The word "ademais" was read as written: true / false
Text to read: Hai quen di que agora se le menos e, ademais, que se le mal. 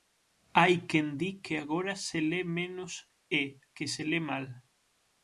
false